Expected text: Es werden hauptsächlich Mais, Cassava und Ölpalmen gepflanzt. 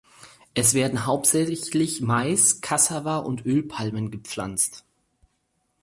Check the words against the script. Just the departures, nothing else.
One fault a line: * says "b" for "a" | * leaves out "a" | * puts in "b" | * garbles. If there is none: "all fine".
all fine